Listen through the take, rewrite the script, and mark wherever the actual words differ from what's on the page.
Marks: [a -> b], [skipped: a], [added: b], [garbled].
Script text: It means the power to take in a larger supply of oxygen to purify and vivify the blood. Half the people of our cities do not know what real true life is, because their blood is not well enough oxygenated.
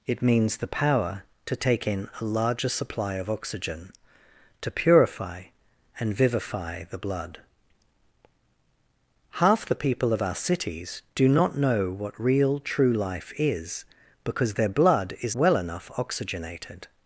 It means the power to take in a larger supply of oxygen to purify and vivify the blood. Half the people of our cities do not know what real true life is, because their blood is [skipped: not] well enough oxygenated.